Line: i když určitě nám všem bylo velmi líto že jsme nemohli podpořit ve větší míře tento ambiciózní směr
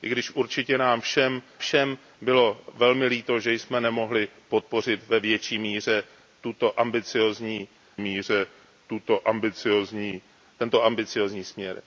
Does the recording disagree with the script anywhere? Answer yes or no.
yes